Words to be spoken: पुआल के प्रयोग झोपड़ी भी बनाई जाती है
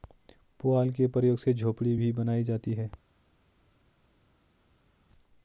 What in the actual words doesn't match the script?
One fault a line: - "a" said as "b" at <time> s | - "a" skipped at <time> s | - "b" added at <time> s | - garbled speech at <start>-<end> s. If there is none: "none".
- "से" added at 1.4 s